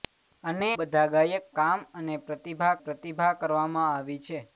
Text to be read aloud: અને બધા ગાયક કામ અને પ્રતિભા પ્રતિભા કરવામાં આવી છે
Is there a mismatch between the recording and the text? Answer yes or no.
no